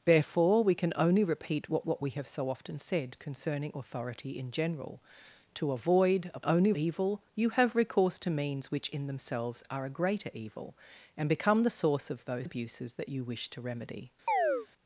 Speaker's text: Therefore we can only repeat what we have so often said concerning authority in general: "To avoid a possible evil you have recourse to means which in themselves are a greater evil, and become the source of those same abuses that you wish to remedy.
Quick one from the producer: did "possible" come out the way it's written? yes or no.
no